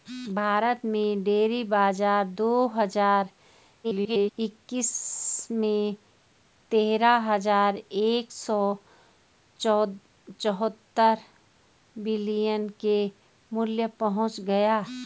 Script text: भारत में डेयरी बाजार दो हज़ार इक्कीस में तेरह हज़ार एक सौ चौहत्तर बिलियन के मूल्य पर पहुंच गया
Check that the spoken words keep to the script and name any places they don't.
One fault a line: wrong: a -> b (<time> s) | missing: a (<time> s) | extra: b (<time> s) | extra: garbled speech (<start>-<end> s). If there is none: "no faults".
extra: garbled speech (3.8-4.3 s)
missing: पर (13.9 s)